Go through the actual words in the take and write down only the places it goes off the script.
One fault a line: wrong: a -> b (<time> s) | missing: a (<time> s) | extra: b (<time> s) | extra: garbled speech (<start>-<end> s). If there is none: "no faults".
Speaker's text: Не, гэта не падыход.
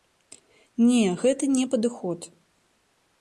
no faults